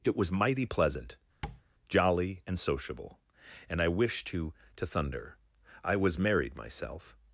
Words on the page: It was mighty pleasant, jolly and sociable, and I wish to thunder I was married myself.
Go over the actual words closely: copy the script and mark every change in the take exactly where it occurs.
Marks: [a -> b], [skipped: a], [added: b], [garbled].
It was mighty pleasant, jolly and sociable, and I wish to [added: to] thunder I was married myself.